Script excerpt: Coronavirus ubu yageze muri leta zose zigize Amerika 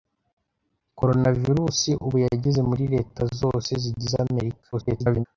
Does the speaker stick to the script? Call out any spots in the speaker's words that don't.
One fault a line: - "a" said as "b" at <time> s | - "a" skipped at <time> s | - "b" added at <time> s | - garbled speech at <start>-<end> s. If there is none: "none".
- garbled speech at 4.7-5.3 s